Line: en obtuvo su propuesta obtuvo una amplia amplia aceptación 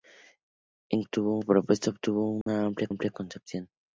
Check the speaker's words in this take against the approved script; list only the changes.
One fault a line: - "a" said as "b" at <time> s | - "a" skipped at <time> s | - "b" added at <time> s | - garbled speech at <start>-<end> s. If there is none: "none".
none